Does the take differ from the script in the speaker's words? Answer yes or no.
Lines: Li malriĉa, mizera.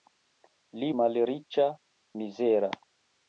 no